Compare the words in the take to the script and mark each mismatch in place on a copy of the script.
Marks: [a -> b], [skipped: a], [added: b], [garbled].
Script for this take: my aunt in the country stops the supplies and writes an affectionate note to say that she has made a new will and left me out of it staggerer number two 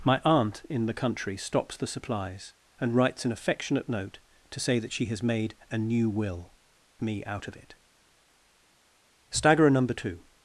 my aunt in the country stops the supplies and writes an affectionate note to say that she has made a new will [skipped: and left] me out of it staggerer number two